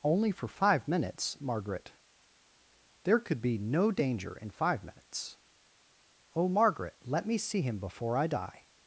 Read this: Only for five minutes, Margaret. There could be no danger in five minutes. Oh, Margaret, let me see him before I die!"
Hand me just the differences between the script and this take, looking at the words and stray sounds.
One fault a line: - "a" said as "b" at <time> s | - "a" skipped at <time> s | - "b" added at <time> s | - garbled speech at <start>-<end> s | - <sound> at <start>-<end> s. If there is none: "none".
none